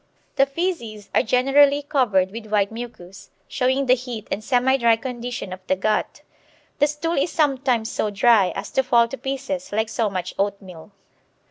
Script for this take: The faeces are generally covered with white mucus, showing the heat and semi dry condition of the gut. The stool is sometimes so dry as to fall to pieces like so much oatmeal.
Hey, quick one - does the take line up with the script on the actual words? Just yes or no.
yes